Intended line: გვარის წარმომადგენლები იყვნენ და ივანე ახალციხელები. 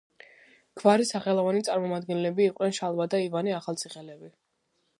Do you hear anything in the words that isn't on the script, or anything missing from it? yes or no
yes